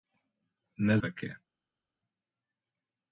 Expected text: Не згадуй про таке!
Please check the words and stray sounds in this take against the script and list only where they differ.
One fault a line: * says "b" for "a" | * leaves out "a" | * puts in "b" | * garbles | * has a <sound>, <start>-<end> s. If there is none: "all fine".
* leaves out "згадуй про"